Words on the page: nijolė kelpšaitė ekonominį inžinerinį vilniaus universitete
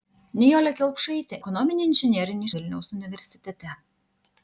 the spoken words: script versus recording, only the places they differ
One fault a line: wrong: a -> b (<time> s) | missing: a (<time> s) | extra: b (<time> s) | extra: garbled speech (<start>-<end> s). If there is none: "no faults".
no faults